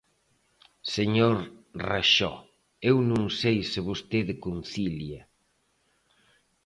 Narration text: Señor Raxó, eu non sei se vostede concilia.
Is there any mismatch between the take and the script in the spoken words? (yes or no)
no